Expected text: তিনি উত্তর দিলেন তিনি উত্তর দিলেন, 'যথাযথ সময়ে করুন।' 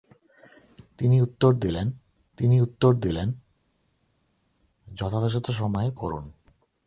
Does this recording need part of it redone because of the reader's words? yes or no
no